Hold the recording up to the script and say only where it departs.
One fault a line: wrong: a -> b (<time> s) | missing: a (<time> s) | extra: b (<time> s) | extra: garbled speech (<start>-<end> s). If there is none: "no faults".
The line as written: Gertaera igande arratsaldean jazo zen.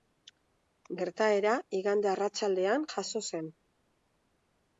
no faults